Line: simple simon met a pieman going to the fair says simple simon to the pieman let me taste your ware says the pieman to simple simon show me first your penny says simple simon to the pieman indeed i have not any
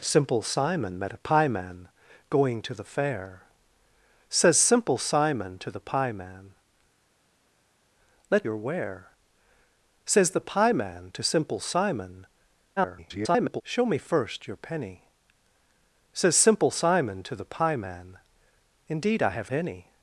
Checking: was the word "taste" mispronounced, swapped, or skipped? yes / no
yes